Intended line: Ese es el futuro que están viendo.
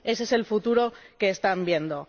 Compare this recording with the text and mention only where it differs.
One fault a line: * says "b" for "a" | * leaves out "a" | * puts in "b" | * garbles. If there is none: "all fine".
all fine